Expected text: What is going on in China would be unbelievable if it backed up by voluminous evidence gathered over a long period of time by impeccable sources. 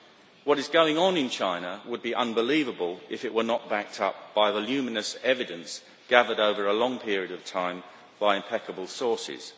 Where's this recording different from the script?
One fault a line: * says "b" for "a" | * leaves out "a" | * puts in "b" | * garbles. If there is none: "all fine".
* puts in "were not"